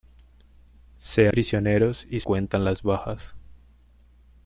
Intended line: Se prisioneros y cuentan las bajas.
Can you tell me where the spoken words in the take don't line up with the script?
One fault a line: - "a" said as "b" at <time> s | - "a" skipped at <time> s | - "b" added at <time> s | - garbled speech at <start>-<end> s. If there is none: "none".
none